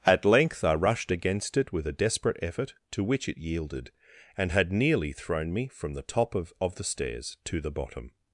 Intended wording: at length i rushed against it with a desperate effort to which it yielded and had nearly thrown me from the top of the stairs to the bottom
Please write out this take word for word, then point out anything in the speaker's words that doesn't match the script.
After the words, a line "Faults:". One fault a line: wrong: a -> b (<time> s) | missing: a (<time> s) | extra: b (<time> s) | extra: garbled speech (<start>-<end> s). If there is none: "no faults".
at length i rushed against it with a desperate effort to which it yielded and had nearly thrown me from the top of of the stairs to the bottom
Faults:
extra: of (6.6 s)